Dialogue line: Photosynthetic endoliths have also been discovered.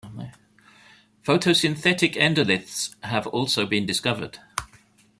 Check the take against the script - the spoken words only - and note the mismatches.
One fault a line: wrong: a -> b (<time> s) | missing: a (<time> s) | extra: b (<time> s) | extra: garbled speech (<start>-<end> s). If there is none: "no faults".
no faults